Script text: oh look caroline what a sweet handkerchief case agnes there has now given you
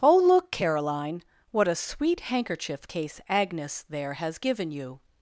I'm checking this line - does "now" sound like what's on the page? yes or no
no